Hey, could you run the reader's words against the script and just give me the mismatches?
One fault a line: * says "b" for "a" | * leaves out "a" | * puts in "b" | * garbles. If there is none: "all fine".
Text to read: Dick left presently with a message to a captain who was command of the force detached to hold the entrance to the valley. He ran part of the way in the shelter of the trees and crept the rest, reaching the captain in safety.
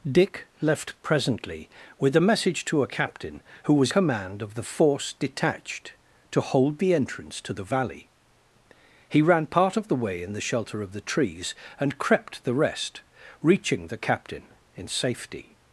all fine